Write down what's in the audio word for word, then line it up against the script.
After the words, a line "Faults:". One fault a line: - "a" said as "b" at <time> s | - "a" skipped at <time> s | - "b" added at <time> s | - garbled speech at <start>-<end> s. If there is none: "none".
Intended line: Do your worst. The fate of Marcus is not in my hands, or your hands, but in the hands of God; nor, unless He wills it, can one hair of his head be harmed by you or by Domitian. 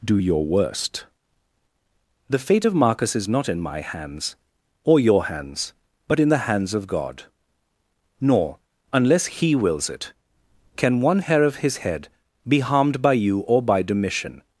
Do your worst. The fate of Marcus is not in my hands, or your hands, but in the hands of God; nor, unless He wills it, can one hair of his head be harmed by you or by Domitian.
Faults:
none